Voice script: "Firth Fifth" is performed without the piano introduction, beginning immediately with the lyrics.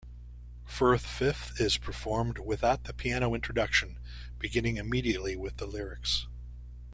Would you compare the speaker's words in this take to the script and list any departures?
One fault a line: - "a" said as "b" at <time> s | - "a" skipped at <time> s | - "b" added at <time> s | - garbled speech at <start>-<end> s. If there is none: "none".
none